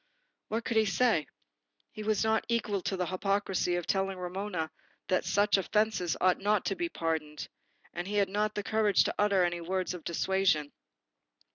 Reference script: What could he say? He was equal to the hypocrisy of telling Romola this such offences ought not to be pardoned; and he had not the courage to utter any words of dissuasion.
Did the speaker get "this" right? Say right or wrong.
wrong